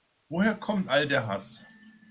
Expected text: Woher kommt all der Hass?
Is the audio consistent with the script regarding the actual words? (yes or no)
yes